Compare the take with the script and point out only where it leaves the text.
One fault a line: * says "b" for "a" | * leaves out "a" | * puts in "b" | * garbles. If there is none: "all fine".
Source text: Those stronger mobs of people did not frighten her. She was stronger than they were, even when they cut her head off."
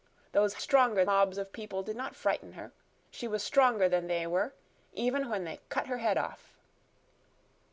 all fine